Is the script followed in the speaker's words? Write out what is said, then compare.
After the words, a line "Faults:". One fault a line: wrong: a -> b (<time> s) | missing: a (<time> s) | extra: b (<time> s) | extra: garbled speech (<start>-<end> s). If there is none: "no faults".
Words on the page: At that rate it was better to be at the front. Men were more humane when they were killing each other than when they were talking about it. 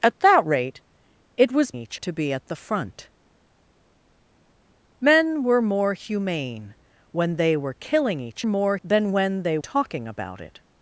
At that rate it was each to be at the front. Men were more humane when they were killing each more than when they talking about it.
Faults:
wrong: better -> each (1.7 s)
wrong: other -> more (8.4 s)
missing: were (9.6 s)